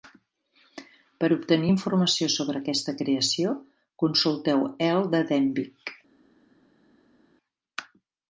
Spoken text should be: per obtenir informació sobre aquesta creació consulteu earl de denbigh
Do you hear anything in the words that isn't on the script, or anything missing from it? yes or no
no